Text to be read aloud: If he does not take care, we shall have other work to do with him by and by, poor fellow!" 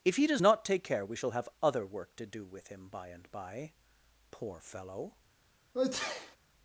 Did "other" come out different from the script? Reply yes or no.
no